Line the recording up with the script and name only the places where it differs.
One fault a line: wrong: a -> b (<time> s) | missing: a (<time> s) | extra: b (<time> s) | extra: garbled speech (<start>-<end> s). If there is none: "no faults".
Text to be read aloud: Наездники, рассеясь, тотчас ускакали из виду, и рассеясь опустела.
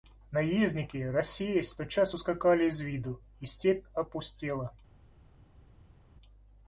wrong: рассеясь -> степь (3.5 s)